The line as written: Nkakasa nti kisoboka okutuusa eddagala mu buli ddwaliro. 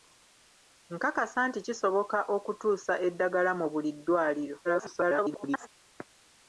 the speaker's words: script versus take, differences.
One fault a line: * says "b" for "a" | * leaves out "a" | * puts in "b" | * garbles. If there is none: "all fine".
* garbles